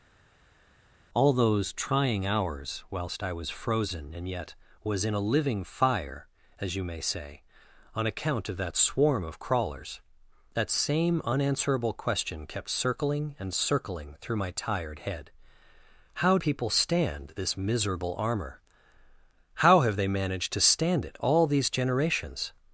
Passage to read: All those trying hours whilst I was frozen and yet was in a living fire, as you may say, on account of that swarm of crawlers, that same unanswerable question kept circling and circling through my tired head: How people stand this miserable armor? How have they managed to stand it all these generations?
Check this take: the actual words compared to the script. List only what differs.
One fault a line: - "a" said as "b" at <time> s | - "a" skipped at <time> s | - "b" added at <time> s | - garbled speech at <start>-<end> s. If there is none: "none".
none